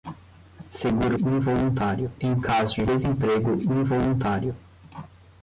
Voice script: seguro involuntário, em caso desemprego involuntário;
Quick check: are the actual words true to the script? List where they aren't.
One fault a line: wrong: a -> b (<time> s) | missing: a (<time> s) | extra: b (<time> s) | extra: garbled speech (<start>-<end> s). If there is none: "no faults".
no faults